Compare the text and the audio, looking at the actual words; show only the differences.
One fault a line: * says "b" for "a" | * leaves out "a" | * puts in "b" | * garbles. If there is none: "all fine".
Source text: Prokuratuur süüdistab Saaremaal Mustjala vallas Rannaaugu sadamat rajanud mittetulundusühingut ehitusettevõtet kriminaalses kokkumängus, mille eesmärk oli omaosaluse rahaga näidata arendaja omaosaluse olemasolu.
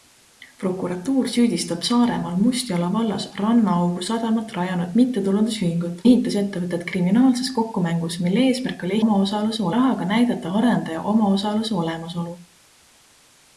all fine